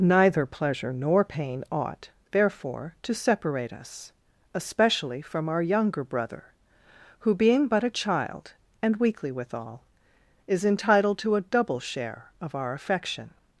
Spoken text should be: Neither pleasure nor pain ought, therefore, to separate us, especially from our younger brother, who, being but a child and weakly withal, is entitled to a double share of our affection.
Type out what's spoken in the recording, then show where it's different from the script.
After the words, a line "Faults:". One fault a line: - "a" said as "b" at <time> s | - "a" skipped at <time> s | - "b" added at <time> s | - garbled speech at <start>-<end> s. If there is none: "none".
Neither pleasure nor pain ought, therefore, to separate us, especially from our younger brother, who, being but a child and weakly withal, is entitled to a double share of our affection.
Faults:
none